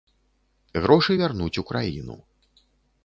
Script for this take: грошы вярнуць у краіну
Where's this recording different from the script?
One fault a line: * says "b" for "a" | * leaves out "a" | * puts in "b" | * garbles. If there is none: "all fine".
all fine